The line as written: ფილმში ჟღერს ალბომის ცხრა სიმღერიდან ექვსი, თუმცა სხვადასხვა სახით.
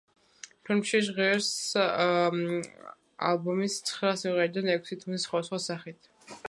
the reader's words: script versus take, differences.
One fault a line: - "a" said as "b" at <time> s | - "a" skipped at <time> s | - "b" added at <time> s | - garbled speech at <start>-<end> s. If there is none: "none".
none